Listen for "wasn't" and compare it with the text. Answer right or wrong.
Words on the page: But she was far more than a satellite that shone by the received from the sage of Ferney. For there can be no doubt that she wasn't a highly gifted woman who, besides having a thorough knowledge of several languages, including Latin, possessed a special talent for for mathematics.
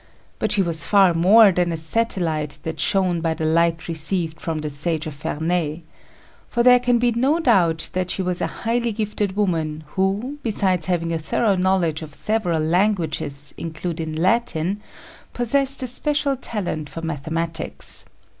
wrong